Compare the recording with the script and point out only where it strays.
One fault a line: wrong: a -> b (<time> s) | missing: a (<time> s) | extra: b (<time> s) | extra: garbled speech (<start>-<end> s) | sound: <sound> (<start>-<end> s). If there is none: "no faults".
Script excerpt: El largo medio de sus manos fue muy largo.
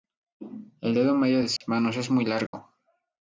wrong: largo -> dedo (0.9 s)
sound: dropout (1.6-1.6 s)
wrong: fue -> es (2.0 s)
sound: dropout (2.5-2.5 s)